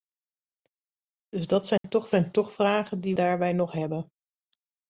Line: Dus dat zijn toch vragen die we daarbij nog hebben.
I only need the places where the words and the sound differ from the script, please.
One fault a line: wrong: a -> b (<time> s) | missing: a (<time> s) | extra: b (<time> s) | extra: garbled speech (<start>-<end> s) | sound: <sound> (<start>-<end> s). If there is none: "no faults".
sound: dropout (1.8-1.8 s)
extra: zijn toch (2.1 s)
missing: we (3.2 s)